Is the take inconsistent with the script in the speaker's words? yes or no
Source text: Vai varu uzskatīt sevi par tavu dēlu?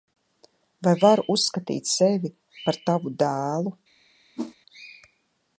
no